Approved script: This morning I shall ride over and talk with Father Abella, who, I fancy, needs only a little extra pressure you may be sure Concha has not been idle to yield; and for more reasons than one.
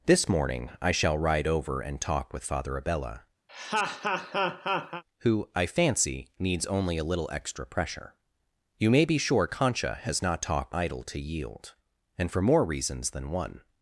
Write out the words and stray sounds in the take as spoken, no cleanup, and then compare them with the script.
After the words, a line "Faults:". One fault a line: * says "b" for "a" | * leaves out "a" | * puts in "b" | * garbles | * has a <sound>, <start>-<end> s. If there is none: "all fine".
This morning I shall ride over and talk with Father Abella, who, I fancy, needs only a little extra pressure you may be sure Concha has not talk idle to yield; and for more reasons than one.
Faults:
* has a laugh, 3.5-5.0 s
* says "talk" for "been"